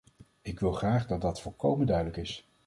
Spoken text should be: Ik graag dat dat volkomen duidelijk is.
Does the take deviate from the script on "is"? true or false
false